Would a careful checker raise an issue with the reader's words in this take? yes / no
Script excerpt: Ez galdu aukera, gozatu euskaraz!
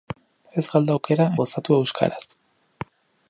no